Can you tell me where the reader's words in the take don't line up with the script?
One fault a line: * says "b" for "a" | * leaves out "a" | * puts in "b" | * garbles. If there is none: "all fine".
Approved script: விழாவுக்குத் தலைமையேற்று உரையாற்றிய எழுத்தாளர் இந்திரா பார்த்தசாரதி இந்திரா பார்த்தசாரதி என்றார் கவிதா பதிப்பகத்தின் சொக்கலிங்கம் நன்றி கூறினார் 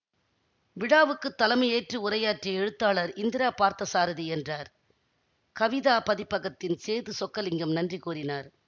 * leaves out "இந்திரா பார்த்தசாரதி"
* puts in "சேது"